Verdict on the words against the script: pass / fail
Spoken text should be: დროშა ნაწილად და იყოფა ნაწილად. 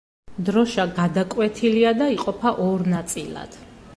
fail